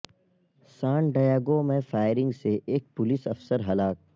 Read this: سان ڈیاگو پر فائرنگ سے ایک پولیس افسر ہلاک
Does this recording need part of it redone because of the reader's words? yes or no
yes